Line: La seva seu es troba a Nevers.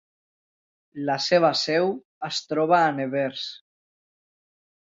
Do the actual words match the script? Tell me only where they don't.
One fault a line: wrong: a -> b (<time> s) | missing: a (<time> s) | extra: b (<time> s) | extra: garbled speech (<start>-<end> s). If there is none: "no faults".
no faults